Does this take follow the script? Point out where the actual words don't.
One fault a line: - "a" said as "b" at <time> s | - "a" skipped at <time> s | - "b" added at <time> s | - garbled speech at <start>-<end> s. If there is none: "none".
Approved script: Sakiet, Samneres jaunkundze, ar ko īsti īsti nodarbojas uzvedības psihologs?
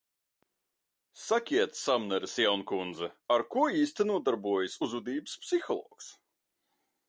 - "īsti" skipped at 4.1 s